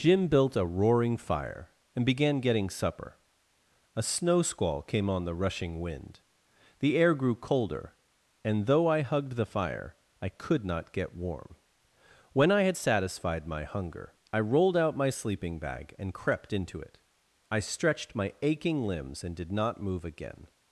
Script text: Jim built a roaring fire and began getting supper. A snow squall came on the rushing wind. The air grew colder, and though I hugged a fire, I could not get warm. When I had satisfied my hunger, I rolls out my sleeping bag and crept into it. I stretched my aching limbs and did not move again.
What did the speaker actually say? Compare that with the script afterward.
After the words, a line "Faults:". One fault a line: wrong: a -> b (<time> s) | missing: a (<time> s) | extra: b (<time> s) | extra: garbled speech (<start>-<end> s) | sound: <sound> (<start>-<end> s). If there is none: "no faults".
Jim built a roaring fire and began getting supper. A snow squall came on the rushing wind. The air grew colder, and though I hugged the fire, I could not get warm. When I had satisfied my hunger, I rolled out my sleeping bag and crept into it. I stretched my aching limbs and did not move again.
Faults:
wrong: a -> the (9.4 s)
wrong: rolls -> rolled (14.4 s)